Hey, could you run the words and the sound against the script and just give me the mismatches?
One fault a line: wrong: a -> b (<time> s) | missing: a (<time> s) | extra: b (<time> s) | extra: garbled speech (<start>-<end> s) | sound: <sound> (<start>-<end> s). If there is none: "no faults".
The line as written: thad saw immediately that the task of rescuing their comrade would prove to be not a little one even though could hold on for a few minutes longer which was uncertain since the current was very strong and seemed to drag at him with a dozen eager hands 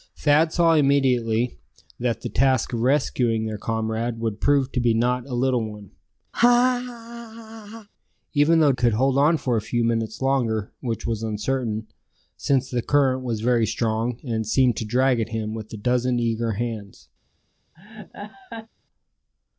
sound: laugh (6.3-7.9 s)
sound: laugh (17.7-18.7 s)